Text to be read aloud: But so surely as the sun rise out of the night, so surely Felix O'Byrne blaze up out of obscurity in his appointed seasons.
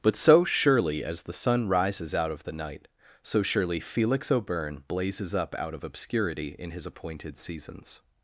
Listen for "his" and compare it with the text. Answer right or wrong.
right